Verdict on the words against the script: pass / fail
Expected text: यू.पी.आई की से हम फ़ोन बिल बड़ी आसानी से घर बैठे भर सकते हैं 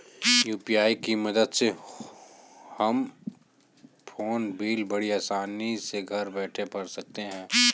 fail